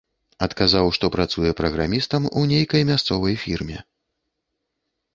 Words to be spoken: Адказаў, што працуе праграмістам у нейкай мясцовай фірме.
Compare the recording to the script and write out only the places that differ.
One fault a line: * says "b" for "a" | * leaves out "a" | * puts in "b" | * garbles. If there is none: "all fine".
all fine